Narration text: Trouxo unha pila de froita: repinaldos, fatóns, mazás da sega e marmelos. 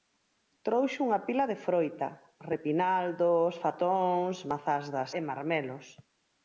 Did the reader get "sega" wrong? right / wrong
wrong